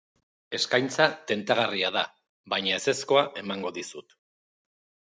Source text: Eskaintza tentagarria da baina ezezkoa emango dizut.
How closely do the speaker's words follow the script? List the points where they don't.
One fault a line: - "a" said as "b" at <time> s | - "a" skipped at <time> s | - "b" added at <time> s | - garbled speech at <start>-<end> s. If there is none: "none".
none